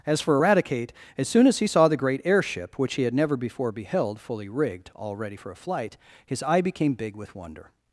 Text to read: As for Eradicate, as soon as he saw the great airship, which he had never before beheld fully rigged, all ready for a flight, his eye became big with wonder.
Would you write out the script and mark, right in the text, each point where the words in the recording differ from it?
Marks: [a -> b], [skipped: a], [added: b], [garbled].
As for Eradicate, as soon as he saw the great airship, which he had never before beheld fully rigged, all ready for a flight, his eye became big with wonder.